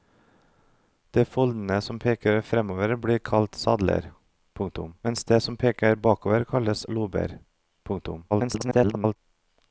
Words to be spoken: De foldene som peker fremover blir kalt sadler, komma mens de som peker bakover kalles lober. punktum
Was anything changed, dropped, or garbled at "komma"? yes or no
yes